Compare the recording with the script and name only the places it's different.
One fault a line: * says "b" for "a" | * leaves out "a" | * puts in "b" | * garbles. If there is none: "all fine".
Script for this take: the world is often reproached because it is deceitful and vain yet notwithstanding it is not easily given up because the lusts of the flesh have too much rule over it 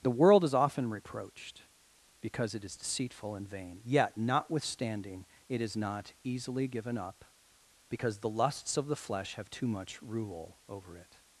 all fine